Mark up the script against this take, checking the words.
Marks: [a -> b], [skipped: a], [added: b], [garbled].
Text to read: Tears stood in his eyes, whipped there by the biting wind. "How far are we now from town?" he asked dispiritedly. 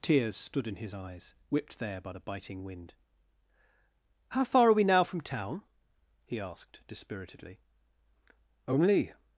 Tears stood in his eyes, whipped there by the biting wind. "How far are we now from town?" he asked dispiritedly. [added: Only]